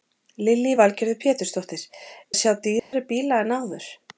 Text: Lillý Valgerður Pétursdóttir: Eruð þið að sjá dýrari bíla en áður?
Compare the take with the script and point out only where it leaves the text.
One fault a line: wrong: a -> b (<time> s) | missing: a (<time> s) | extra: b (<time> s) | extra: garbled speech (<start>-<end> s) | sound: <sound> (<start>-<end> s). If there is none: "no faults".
missing: Eruð þið (1.8 s)
sound: dropout (2.8-2.9 s)